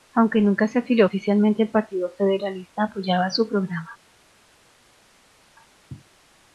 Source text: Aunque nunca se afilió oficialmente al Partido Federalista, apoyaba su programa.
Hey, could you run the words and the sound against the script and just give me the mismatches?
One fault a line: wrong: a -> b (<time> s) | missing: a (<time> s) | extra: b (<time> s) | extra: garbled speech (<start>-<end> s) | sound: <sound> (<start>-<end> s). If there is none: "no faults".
no faults